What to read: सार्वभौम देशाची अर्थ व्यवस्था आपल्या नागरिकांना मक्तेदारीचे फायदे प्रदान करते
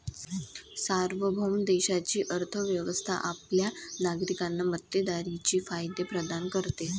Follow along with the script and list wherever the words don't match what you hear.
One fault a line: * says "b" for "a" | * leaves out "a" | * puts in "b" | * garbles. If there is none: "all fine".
all fine